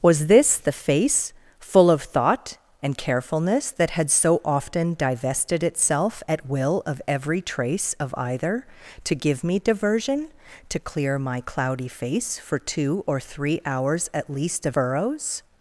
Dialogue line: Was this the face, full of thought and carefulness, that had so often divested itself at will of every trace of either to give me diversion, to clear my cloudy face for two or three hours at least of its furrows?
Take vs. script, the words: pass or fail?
fail